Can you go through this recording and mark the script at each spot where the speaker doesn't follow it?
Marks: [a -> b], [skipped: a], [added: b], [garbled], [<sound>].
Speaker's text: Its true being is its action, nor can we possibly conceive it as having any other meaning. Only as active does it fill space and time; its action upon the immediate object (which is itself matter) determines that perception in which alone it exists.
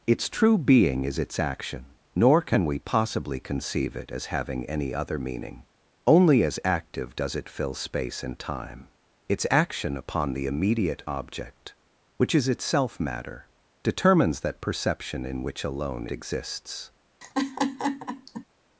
Its true being is its action, nor can we possibly conceive it as having any other meaning. Only as active does it fill space and time; its action upon the immediate object (which is itself matter) determines that perception in which alone [skipped: it] exists. [laugh]